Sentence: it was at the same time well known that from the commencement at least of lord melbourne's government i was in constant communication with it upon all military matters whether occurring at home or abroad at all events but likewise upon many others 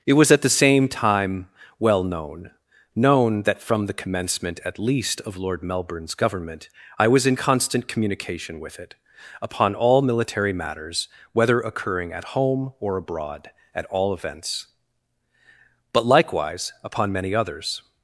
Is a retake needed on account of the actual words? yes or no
yes